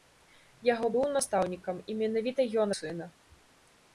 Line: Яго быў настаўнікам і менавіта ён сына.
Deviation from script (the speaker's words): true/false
false